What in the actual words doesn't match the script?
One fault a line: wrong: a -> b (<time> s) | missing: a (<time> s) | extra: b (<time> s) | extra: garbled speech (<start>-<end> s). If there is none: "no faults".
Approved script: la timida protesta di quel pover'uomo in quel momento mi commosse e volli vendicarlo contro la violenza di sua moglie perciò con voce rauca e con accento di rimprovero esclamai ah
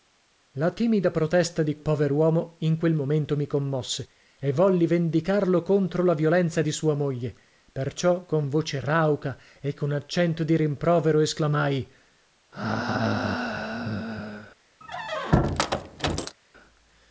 missing: quel (1.8 s)